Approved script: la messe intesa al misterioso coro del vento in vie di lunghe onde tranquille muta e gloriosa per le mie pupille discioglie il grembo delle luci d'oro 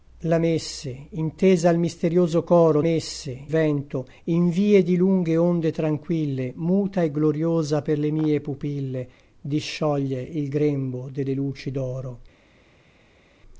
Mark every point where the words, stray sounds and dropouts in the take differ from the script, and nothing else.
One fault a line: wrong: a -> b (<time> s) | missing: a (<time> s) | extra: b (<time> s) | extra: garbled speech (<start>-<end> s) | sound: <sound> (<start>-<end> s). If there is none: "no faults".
wrong: del -> messe (2.8 s)